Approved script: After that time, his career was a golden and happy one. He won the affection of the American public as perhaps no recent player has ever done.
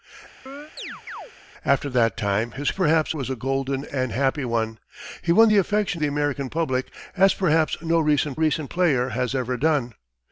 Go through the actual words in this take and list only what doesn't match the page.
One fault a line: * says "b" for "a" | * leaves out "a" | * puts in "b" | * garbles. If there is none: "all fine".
* says "perhaps" for "career"
* leaves out "of"
* puts in "recent"